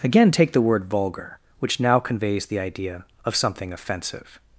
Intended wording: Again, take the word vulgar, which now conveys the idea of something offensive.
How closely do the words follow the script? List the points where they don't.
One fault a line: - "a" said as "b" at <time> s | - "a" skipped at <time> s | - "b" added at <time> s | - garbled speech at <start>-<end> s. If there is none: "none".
none